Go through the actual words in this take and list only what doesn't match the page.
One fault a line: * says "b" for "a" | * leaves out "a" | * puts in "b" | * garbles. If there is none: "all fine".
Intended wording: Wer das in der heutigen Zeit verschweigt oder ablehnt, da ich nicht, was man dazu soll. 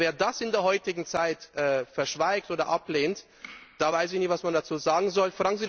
* puts in "weiß"
* puts in "sagen"